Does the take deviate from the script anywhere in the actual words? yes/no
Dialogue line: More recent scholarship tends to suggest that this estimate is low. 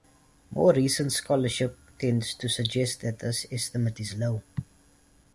no